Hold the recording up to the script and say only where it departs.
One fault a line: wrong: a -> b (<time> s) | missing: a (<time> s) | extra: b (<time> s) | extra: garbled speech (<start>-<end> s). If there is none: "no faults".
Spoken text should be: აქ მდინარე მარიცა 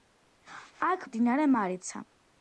no faults